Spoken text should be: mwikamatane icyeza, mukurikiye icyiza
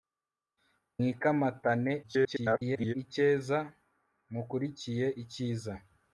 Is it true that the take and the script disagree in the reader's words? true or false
true